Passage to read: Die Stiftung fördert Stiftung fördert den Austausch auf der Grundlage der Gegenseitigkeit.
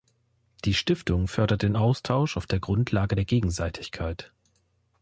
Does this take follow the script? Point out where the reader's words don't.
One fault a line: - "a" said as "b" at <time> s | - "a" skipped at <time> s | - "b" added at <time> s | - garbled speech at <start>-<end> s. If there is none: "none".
- "Stiftung fördert" skipped at 1.6 s